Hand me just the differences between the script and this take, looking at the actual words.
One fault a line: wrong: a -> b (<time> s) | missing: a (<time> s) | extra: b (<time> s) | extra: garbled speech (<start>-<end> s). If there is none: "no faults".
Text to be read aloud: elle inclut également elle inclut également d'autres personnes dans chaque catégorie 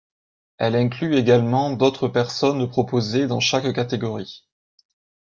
missing: elle inclut également (1.7 s)
extra: proposées (2.7 s)